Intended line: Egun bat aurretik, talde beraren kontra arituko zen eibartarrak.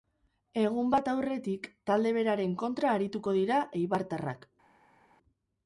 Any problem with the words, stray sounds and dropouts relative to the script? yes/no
yes